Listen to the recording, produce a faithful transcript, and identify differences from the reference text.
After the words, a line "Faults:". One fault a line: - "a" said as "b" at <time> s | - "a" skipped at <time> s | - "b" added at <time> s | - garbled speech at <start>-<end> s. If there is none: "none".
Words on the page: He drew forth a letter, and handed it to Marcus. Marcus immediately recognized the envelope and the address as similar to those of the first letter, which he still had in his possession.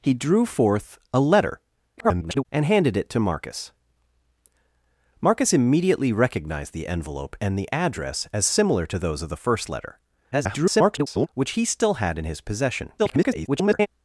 He drew forth a letter, [garbled] and handed it to Marcus. Marcus immediately recognized the envelope and the address as similar to those of the first letter, [garbled] which he still had in his possession. [garbled]
Faults:
- garbled speech at 2.0-2.5 s
- garbled speech at 10.3-11.3 s
- garbled speech at 13.0-13.9 s